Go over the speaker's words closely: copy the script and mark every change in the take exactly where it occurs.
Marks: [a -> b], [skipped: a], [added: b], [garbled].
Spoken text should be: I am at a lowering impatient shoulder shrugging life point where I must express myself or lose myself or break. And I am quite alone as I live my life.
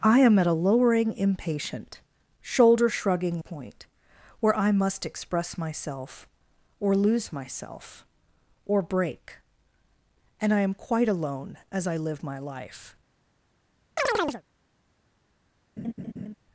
I am at a lowering impatient shoulder shrugging [skipped: life] point where I must express myself or lose myself or break. And I am quite alone as I live my life.